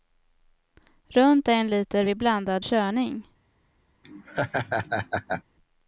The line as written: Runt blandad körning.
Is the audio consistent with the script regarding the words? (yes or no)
no